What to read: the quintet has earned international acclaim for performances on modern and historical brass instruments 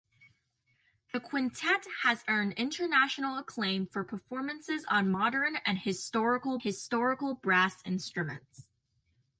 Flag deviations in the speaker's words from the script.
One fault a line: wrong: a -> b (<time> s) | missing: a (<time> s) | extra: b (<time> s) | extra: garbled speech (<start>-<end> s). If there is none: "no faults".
extra: historical (6.6 s)